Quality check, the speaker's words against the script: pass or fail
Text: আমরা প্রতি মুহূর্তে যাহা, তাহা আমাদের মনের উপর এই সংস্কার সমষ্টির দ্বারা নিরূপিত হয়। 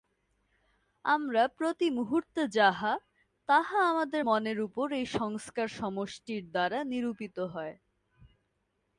pass